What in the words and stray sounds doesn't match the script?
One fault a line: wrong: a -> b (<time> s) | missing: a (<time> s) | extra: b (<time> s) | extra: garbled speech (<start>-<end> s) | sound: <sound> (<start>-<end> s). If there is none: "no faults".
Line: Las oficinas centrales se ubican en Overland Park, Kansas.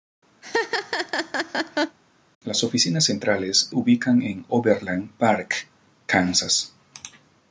sound: laugh (0.4-2.0 s)
missing: se (3.7 s)